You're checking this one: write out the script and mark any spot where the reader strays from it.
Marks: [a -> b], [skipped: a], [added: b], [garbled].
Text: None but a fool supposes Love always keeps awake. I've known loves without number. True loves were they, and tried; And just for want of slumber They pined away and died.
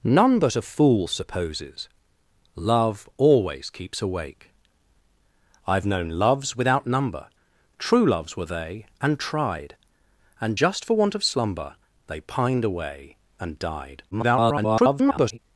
None but a fool supposes Love always keeps awake. I've known loves without number. True loves were they, and tried; And just for want of slumber They pined away and died. [garbled]